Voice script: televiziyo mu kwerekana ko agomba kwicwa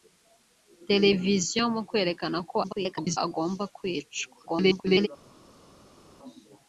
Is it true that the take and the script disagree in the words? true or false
true